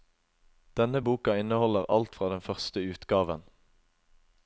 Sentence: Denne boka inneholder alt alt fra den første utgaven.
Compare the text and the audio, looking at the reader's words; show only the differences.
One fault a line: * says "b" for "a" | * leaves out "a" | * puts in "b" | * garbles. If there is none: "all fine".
* leaves out "alt"